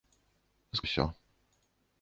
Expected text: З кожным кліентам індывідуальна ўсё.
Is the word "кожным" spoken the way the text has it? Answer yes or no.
no